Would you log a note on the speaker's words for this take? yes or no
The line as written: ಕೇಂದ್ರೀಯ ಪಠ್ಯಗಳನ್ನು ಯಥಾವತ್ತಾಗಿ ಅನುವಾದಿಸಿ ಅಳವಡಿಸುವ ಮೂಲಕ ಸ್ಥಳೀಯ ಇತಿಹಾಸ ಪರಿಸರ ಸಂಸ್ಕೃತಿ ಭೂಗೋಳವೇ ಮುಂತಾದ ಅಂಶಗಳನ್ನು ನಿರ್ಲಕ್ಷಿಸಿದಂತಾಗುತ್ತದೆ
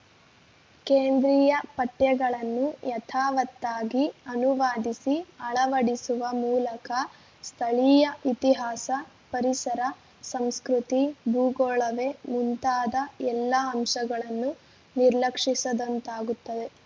yes